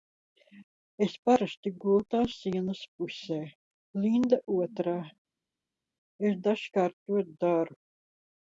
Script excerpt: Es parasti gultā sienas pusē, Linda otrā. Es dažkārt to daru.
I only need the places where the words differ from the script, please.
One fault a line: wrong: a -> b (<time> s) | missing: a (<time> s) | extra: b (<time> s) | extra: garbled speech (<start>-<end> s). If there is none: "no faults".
no faults